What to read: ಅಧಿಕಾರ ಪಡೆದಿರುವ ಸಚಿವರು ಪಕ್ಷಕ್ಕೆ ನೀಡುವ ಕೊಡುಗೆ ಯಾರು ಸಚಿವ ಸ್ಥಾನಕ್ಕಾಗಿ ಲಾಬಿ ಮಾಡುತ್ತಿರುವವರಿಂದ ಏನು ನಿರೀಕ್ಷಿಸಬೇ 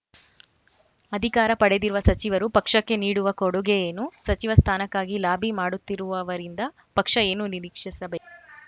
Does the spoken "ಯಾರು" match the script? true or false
false